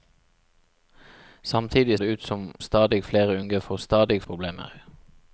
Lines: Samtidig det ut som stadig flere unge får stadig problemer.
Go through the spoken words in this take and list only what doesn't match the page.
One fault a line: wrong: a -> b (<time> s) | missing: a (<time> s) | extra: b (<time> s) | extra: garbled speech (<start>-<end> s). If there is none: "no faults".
no faults